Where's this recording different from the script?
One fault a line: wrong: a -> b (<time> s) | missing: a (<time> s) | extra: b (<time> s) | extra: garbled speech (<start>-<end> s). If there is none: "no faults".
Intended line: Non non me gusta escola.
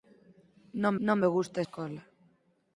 no faults